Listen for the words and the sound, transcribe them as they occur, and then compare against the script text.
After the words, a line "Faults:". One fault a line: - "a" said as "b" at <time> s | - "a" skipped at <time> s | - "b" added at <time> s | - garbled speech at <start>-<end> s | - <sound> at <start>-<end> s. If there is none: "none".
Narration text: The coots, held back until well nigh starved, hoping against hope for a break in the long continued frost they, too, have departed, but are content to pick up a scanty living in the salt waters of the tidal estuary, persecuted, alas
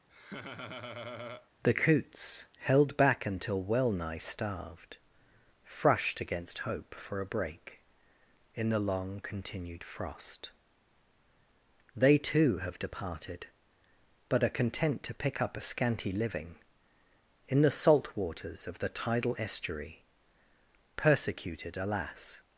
The coots, held back until well nigh starved, frushed against hope for a break in the long continued frost they, too, have departed, but are content to pick up a scanty living in the salt waters of the tidal estuary, persecuted, alas
Faults:
- laugh at 0.1-1.5 s
- "hoping" said as "frushed" at 5.6 s